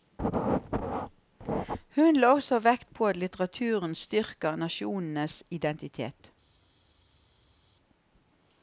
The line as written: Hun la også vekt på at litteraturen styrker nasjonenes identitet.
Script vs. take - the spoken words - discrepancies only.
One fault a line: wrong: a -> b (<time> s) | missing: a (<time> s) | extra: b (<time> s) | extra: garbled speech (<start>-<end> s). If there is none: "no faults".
no faults